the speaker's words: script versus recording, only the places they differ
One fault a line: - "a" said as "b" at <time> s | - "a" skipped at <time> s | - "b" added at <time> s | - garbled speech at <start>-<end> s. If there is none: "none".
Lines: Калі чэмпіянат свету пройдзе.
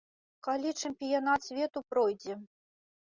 none